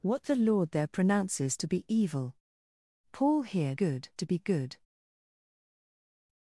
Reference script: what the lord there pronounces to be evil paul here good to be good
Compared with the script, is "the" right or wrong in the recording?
right